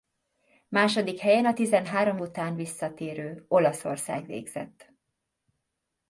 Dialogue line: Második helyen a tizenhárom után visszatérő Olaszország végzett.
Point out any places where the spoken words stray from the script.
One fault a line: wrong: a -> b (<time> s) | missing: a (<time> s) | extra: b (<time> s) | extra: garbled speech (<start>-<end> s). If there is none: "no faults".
no faults